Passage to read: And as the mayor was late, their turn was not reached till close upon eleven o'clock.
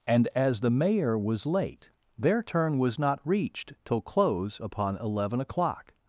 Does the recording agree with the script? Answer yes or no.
yes